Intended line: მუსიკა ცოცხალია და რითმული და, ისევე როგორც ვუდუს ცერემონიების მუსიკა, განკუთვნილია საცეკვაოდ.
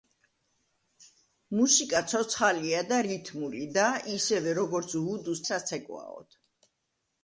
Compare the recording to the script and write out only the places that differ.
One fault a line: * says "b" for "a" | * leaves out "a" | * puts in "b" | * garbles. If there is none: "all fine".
* leaves out "ცერემონიების მუსიკა განკუთვნილია"